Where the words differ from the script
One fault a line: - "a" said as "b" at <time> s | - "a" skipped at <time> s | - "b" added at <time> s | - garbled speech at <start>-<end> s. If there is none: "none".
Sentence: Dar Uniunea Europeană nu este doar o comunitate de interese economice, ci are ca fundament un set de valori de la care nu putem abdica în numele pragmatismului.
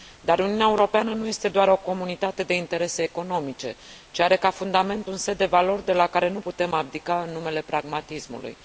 none